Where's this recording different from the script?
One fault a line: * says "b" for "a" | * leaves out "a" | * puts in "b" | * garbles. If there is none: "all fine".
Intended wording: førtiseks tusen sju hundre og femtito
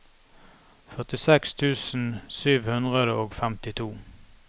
all fine